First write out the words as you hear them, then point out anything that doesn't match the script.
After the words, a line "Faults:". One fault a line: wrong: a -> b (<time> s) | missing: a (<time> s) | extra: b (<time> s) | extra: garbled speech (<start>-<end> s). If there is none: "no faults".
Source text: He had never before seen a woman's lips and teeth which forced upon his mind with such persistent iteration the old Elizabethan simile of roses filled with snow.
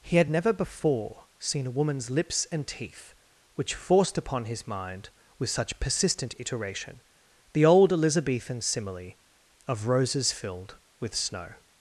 He had never before seen a woman's lips and teeth which forced upon his mind with such persistent iteration the old Elizabethan simile of roses filled with snow.
Faults:
no faults